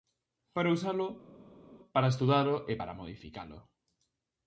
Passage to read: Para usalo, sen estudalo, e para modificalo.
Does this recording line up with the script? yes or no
no